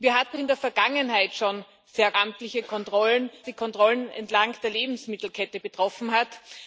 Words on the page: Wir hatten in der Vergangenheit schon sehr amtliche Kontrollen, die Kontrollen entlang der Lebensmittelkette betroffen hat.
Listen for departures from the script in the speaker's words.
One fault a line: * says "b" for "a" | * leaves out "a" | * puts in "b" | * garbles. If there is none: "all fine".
all fine